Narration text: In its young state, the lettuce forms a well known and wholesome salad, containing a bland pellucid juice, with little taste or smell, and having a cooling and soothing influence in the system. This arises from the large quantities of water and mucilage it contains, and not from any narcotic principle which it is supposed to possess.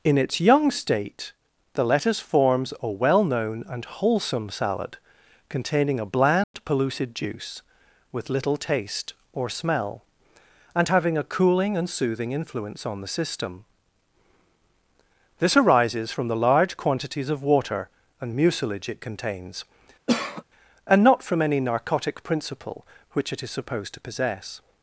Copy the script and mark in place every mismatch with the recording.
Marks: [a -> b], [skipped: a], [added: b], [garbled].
In its young state, the lettuce forms a well known and wholesome salad, containing a bland pellucid juice, with little taste or smell, and having a cooling and soothing influence [in -> on] the system. This arises from the large quantities of water and mucilage it contains, and not from any narcotic principle which it is supposed to possess.